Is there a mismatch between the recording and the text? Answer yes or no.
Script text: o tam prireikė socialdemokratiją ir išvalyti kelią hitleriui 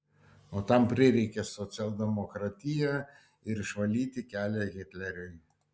no